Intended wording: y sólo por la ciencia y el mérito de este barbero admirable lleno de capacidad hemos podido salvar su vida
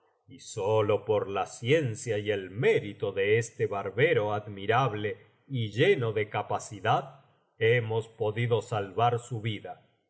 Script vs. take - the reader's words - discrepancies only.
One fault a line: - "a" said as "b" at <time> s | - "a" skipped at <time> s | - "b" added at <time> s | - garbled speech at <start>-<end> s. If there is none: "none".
- "y" added at 5.5 s